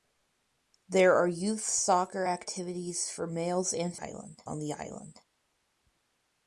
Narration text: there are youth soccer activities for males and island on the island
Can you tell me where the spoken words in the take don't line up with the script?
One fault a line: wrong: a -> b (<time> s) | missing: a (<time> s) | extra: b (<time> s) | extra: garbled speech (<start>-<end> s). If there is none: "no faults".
no faults